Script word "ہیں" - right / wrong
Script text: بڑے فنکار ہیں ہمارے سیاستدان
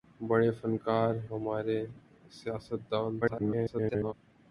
wrong